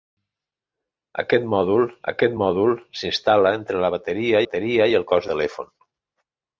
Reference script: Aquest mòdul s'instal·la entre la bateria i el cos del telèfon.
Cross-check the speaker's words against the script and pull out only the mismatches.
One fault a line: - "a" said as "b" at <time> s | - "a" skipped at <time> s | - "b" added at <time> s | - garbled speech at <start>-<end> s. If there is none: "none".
- "aquest mòdul" added at 2.1 s
- "bateria" added at 4.4 s
- "del" skipped at 5.3 s